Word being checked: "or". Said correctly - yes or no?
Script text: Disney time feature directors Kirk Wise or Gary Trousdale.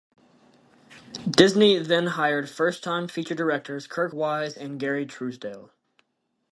no